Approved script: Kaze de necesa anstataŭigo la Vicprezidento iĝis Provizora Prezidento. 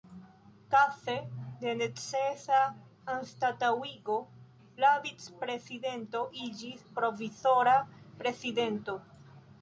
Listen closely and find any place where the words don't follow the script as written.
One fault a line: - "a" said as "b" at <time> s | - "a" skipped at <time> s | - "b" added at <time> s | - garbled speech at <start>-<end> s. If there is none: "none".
none